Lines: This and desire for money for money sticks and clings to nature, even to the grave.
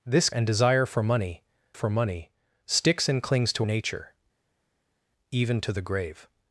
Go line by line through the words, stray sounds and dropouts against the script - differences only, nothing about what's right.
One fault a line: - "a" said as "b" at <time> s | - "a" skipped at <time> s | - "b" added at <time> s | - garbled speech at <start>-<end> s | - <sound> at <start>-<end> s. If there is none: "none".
none